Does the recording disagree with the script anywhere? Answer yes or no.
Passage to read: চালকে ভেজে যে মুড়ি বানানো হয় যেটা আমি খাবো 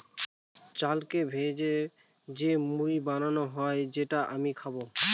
no